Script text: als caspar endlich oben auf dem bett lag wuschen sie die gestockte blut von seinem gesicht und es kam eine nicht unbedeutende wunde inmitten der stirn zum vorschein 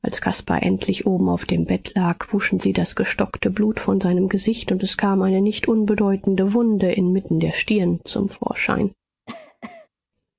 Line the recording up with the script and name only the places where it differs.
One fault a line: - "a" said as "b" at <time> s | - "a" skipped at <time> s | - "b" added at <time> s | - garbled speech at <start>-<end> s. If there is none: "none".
- "die" said as "das" at 2.7 s